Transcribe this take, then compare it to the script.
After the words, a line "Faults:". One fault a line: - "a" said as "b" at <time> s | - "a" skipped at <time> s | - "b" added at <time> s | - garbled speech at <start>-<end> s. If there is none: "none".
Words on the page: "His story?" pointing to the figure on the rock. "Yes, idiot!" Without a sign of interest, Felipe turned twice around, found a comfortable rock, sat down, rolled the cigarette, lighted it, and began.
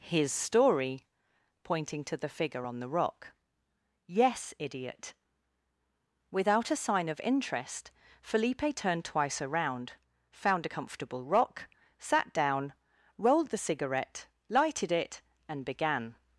"His story?" pointing to the figure on the rock. "Yes, idiot!" Without a sign of interest, Felipe turned twice around, found a comfortable rock, sat down, rolled the cigarette, lighted it, and began.
Faults:
none